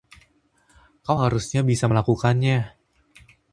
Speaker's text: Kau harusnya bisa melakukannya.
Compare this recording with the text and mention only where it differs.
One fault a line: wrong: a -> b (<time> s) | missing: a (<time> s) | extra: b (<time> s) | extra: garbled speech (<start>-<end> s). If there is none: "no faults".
no faults